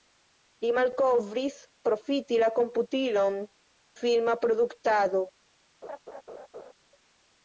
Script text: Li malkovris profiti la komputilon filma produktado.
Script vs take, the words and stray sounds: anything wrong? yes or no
yes